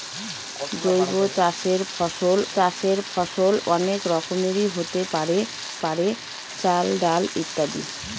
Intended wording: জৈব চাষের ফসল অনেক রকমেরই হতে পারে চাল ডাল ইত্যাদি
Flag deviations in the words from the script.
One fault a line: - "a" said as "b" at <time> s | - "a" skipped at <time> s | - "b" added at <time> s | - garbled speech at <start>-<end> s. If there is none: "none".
- "চাষের ফসল" added at 2.5 s
- "পারে" added at 5.8 s